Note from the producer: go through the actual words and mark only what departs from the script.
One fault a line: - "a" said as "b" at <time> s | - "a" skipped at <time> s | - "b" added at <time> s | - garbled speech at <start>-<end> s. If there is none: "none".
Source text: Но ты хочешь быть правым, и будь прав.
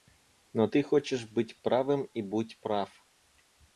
none